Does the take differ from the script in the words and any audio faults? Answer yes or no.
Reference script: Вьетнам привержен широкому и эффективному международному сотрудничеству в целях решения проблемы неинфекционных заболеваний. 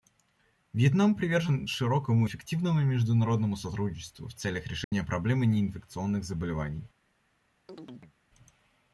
yes